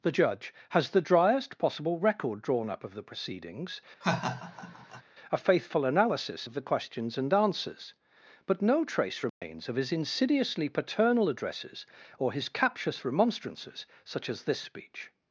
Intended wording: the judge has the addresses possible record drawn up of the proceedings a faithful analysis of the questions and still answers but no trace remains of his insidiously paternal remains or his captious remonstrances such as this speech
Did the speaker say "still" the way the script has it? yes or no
no